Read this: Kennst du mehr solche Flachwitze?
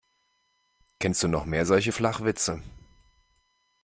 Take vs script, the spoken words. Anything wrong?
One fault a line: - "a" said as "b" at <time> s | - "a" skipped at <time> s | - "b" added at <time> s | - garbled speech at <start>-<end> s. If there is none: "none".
- "noch" added at 1.3 s